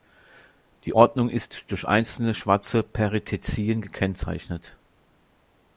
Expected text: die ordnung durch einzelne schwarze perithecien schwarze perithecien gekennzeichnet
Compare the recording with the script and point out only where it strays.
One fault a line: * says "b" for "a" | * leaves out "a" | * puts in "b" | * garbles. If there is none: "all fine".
* puts in "ist"
* leaves out "schwarze perithecien"